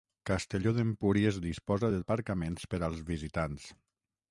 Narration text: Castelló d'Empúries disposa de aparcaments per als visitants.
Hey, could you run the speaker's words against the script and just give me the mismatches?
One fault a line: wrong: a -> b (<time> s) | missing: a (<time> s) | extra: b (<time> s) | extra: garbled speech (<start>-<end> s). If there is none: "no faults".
no faults